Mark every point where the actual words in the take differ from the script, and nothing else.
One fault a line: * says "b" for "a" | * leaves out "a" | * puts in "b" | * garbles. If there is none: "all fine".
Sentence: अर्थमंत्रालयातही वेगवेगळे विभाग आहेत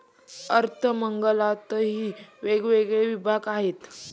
all fine